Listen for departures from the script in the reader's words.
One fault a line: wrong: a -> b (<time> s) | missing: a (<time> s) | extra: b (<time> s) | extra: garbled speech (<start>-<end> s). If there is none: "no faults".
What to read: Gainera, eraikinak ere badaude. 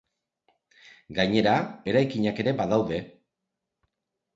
no faults